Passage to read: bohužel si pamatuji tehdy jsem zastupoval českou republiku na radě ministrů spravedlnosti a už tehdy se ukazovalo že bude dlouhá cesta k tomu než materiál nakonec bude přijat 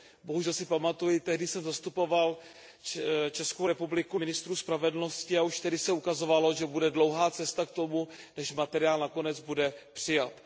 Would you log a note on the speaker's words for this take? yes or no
yes